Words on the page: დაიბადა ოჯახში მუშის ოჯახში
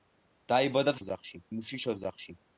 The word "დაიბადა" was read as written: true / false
true